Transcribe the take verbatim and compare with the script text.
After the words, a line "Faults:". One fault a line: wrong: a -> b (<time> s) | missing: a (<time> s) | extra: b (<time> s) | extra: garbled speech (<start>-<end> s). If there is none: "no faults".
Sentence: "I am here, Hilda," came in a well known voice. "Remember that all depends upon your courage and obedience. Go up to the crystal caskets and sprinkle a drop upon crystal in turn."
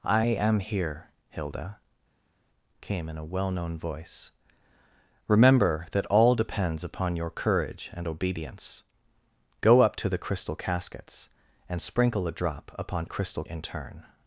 "I am here, Hilda," came in a well known voice. "Remember that all depends upon your courage and obedience. Go up to the crystal caskets and sprinkle a drop upon crystal in turn."
Faults:
no faults